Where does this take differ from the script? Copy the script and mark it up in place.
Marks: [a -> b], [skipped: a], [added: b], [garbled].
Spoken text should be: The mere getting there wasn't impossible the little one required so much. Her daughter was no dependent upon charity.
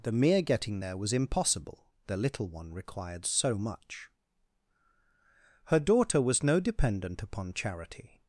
The mere getting there [wasn't -> was] impossible the little one required so much. Her daughter was no dependent upon charity.